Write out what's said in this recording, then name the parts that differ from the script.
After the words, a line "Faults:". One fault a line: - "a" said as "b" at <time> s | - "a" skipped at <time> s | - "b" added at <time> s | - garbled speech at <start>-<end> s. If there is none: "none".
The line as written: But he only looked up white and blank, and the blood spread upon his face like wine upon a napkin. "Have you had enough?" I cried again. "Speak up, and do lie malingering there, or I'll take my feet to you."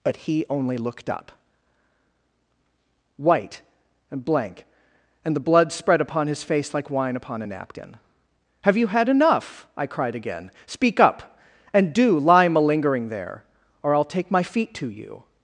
But he only looked up white and blank, and the blood spread upon his face like wine upon a napkin. "Have you had enough?" I cried again. "Speak up, and do lie malingering there, or I'll take my feet to you."
Faults:
none